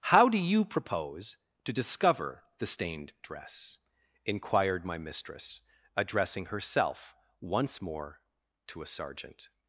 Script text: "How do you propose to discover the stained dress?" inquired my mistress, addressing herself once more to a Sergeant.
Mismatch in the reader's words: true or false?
false